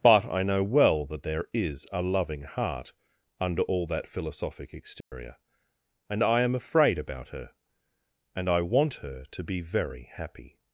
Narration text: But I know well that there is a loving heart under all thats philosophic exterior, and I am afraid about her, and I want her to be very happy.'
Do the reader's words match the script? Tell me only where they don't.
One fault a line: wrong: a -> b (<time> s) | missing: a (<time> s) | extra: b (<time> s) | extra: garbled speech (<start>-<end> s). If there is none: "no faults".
wrong: thats -> that (3.9 s)